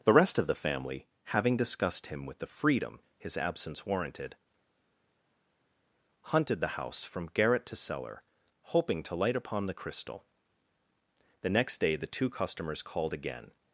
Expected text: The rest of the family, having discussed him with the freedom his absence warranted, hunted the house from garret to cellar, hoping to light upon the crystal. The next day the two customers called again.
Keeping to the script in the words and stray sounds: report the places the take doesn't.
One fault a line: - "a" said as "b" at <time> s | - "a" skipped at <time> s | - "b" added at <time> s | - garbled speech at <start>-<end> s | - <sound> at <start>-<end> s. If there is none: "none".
none